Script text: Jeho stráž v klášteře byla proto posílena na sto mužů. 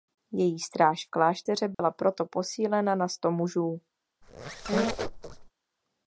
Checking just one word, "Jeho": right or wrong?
wrong